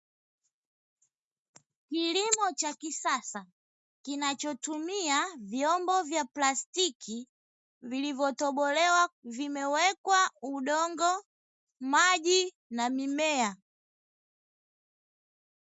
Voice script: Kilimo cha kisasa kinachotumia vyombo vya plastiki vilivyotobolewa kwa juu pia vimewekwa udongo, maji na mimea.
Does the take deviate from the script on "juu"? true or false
true